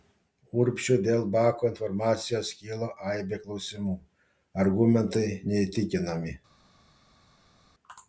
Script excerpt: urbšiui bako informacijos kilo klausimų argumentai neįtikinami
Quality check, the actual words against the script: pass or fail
fail